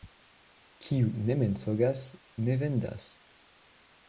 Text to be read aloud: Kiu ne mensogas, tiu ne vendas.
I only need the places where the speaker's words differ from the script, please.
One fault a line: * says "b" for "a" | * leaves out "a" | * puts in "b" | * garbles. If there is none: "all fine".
* leaves out "tiu"